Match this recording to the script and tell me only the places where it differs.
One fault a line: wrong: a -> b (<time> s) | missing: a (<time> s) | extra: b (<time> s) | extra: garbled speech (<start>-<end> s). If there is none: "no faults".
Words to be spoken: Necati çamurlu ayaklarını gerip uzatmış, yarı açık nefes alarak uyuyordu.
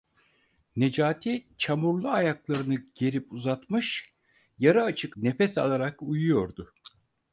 no faults